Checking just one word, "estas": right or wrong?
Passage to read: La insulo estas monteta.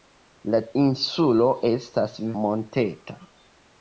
right